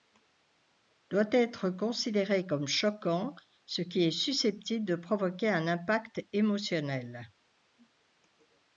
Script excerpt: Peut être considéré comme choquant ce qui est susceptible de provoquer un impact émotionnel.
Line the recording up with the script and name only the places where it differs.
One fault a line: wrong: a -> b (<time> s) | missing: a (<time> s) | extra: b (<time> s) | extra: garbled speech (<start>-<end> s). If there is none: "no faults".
wrong: Peut -> Doit (1.1 s)